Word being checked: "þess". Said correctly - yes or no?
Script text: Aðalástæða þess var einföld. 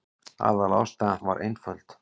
no